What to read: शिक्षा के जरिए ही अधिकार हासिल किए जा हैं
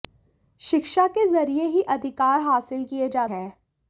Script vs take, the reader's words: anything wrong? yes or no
no